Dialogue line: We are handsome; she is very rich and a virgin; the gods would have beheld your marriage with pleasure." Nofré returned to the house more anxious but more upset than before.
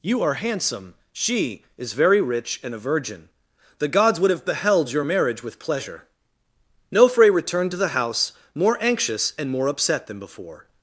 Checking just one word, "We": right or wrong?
wrong